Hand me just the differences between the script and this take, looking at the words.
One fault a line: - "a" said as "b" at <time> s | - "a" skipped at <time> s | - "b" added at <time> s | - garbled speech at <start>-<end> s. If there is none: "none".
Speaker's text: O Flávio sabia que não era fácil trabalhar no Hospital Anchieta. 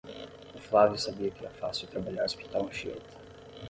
- "não" skipped at 1.4 s
- "no" skipped at 2.3 s